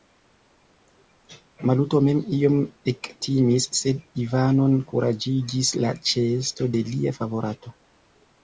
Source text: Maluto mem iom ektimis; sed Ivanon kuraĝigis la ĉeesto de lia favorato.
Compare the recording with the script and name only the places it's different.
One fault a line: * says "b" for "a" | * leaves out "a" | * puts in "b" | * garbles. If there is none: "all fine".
all fine